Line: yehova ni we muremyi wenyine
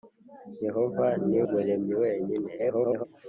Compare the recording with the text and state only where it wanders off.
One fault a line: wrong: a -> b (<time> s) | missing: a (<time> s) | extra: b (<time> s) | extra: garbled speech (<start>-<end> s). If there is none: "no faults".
missing: we (1.4 s)
extra: garbled speech (2.6-3.1 s)